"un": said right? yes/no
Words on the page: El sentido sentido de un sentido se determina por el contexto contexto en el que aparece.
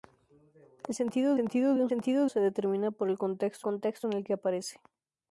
yes